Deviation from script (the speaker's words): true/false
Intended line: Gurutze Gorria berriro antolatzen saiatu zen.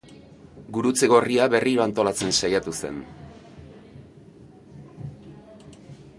false